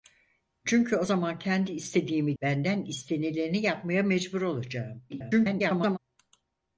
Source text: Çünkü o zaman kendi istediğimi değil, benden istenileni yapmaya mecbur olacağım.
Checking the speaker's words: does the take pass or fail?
fail